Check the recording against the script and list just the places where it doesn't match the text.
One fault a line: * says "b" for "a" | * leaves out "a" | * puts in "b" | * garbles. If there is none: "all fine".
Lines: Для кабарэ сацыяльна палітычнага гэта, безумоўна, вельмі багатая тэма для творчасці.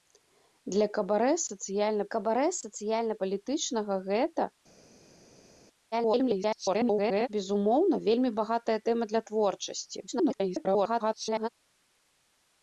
* puts in "кабарэ сацыяльна"
* garbles
* garbles